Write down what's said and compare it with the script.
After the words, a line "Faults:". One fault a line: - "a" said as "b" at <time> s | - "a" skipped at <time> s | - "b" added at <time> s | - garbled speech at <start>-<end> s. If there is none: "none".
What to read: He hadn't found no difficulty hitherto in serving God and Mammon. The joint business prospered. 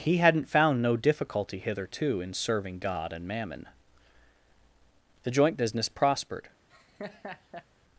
He hadn't found no difficulty hitherto in serving God and Mammon. The joint business prospered.
Faults:
none